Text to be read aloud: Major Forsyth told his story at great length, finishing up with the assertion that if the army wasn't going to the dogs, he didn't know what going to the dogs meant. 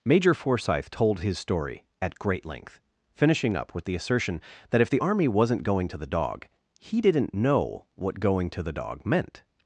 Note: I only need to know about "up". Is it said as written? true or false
true